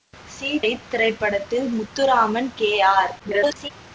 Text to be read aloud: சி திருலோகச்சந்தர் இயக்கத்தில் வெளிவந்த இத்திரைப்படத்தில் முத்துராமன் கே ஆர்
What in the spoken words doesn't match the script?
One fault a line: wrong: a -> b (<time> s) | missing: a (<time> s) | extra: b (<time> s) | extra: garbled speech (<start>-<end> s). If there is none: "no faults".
missing: திருலோகச்சந்தர் இயக்கத்தில் வெளிவந்த (0.5 s)
extra: garbled speech (3.2-3.7 s)